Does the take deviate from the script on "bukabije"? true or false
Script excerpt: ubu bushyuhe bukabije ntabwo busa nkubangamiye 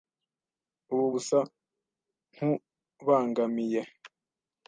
true